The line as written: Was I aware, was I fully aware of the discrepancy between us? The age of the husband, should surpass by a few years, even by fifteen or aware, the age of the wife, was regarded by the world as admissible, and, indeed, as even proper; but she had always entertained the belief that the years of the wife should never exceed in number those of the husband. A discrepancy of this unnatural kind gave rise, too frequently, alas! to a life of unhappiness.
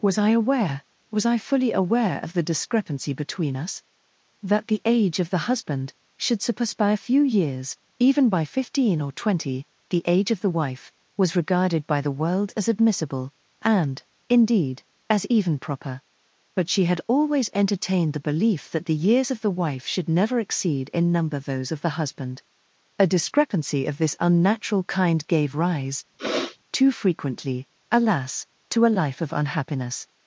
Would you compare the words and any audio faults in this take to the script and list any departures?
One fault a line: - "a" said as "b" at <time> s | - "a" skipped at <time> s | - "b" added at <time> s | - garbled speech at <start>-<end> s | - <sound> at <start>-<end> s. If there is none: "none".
- "That" added at 4.4 s
- "aware" said as "twenty" at 9.1 s
- sniff at 26.2-26.6 s